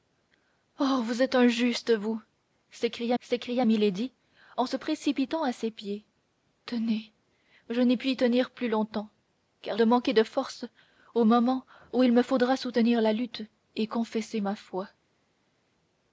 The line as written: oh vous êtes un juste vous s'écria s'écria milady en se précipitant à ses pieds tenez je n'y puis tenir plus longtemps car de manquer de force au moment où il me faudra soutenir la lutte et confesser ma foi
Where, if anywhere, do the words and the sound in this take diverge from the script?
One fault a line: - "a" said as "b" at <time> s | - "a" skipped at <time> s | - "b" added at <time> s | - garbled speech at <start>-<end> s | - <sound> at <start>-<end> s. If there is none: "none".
none